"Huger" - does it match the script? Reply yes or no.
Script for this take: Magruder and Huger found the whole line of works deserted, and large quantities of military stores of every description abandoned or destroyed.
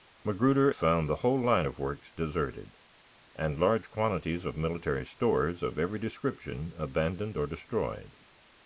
no